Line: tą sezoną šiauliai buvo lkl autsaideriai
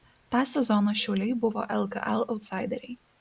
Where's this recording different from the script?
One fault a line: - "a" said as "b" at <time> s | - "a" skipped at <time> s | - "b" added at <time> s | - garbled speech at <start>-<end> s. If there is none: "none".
none